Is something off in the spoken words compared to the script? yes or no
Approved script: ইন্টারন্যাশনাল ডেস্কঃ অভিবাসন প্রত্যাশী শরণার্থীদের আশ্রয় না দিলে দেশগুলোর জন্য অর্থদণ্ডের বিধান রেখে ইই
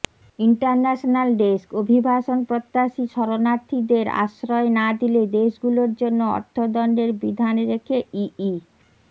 no